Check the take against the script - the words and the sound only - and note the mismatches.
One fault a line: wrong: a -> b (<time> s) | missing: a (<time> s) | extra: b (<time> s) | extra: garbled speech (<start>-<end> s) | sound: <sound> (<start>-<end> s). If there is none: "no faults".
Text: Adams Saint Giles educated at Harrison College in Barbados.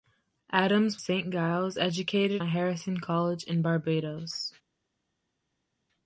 no faults